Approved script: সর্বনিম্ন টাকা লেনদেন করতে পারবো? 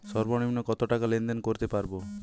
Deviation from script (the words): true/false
true